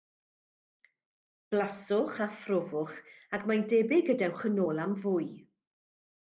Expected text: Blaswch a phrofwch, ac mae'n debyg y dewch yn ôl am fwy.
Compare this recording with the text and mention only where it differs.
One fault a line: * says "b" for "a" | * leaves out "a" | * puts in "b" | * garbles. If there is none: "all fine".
all fine